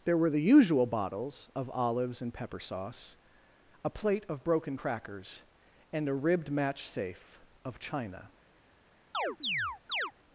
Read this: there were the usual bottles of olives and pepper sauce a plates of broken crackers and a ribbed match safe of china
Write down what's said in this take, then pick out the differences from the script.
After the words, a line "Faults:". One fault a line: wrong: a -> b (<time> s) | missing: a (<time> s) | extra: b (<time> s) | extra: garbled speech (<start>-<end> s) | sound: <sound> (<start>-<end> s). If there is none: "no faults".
there were the usual bottles of olives and pepper sauce a plate of broken crackers and a ribbed match safe of china
Faults:
wrong: plates -> plate (3.9 s)
sound: chirp (9.1-10.1 s)